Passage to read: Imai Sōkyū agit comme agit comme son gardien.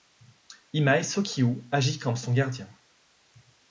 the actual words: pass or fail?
fail